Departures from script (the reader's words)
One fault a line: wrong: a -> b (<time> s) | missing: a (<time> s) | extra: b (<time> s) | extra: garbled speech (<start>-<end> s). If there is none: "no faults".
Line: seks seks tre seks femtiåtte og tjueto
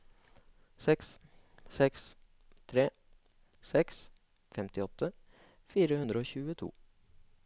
extra: fire hundre (5.8 s)